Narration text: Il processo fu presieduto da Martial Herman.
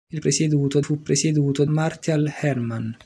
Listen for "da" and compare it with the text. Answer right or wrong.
wrong